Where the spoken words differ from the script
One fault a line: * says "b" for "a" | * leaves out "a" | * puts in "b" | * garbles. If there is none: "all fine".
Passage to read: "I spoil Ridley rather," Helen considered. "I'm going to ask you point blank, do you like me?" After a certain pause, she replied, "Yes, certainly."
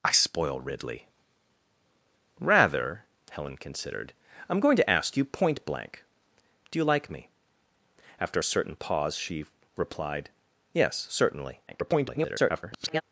* garbles